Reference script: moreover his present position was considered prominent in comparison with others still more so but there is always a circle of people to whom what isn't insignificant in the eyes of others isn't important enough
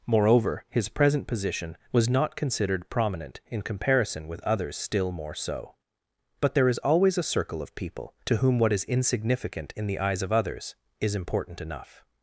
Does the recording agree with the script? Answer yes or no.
no